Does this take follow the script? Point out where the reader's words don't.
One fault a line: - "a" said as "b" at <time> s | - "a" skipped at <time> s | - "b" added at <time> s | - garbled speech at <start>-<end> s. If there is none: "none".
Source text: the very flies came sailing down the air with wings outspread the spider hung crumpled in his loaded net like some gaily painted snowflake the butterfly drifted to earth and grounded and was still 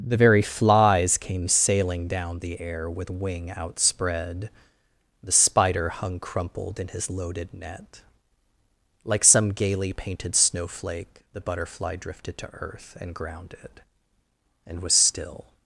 - "wings" said as "wing" at 3.1 s